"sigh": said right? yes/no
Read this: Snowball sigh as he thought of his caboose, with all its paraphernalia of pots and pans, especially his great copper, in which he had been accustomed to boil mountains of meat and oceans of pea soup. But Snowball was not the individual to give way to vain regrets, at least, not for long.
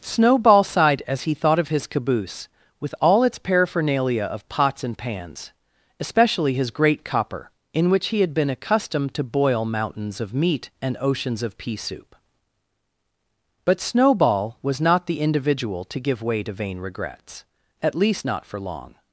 no